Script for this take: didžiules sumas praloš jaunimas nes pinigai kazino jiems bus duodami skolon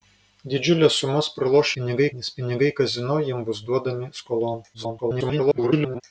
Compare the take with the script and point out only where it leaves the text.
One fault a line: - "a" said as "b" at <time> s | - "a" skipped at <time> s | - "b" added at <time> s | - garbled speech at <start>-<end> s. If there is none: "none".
- "jaunimas" said as "pinigai" at 1.7 s
- garbled speech at 4.7-6.0 s